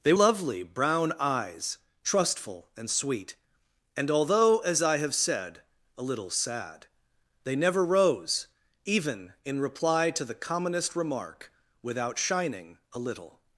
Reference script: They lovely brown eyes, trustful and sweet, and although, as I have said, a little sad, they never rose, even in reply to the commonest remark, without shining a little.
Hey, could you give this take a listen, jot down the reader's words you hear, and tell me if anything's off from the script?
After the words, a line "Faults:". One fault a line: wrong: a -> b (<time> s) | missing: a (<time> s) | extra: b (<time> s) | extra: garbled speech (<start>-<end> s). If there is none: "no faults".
They lovely brown eyes, trustful and sweet, and although, as I have said, a little sad, they never rose, even in reply to the commonest remark, without shining a little.
Faults:
no faults